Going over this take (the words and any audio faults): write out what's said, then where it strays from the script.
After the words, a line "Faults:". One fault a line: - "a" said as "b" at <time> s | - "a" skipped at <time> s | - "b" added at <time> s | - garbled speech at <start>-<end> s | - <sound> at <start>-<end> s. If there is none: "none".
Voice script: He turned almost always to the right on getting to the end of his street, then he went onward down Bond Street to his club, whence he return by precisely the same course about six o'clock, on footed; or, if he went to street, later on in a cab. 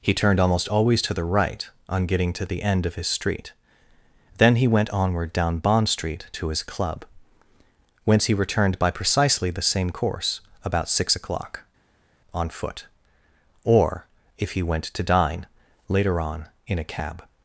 He turned almost always to the right on getting to the end of his street, then he went onward down Bond Street to his club, whence he returned by precisely the same course about six o'clock, on foot; or, if he went to dine, later on in a cab.
Faults:
- "return" said as "returned" at 8.3 s
- "footed" said as "foot" at 12.5 s
- "street" said as "dine" at 15.0 s